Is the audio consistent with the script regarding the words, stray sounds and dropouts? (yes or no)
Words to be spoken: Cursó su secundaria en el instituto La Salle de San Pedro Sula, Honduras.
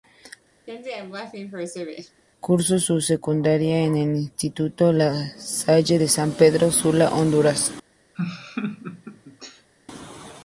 no